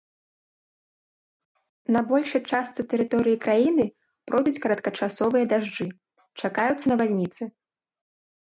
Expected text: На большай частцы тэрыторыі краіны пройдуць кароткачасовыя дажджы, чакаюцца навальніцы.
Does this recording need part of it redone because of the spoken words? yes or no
no